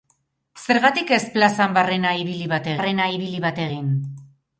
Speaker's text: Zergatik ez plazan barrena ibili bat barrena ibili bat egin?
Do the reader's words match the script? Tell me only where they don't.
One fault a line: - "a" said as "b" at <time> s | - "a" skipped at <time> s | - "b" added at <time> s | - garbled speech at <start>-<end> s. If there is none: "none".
none